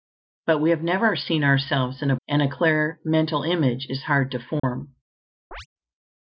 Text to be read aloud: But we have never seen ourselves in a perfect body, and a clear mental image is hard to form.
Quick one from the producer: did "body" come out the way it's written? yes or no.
no